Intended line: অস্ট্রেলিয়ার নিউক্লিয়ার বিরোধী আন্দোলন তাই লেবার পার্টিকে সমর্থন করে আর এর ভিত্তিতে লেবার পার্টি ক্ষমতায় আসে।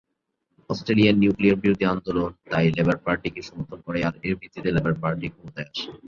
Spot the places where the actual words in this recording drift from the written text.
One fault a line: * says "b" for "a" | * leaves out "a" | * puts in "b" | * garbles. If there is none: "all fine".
all fine